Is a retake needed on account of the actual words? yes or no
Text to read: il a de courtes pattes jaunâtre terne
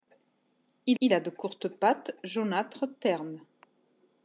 yes